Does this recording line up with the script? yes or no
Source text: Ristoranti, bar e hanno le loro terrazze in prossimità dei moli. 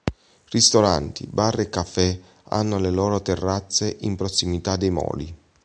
no